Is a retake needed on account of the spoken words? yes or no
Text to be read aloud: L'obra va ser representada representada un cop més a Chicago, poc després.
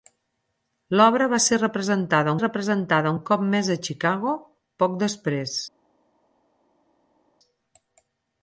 no